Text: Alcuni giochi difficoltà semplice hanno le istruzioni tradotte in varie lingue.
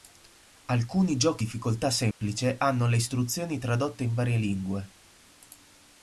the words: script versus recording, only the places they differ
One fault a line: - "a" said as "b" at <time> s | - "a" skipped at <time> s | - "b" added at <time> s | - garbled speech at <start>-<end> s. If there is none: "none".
none